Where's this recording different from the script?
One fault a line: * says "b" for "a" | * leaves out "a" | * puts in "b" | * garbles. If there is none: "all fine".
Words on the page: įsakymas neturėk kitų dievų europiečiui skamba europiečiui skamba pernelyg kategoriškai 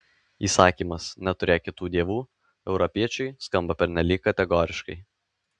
* leaves out "europiečiui skamba"